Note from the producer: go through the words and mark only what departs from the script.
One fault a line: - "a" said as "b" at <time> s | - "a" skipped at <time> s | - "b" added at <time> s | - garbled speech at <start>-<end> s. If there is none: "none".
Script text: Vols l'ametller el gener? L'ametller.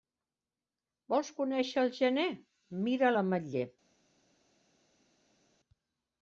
- "l'ametller" said as "conèixer" at 1.4 s
- "Mira" added at 2.9 s